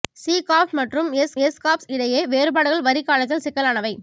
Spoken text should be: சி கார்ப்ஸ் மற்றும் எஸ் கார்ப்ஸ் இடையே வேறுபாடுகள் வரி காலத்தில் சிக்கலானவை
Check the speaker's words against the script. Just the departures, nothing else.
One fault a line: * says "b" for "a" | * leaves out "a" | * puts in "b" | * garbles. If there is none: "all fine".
* puts in "எஸ்"